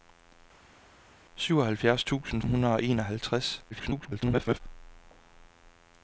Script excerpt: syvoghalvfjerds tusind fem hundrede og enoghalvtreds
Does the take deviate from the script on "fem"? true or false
true